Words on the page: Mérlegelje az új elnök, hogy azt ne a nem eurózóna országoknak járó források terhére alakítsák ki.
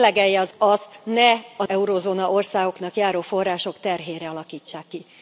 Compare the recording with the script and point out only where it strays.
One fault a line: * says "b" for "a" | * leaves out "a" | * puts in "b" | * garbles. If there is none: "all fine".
* leaves out "új elnök hogy"
* leaves out "nem"